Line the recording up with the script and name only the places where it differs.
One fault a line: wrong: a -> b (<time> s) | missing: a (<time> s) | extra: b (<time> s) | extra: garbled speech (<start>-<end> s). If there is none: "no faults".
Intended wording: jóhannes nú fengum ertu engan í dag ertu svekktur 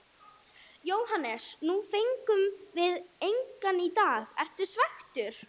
wrong: ertu -> við (2.8 s)